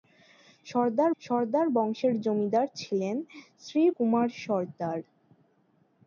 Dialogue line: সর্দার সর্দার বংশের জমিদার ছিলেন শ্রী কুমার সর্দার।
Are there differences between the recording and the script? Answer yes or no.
no